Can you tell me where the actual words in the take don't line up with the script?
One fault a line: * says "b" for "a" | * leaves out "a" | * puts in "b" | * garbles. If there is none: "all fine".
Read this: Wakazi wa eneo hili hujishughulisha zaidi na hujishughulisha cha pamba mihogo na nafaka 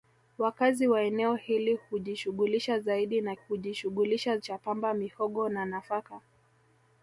all fine